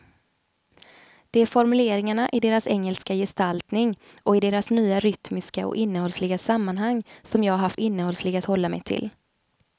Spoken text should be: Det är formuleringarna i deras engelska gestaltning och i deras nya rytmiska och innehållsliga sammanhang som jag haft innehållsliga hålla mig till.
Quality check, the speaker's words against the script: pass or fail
pass